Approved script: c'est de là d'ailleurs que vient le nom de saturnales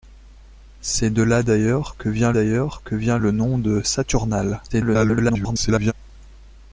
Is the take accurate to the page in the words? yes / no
no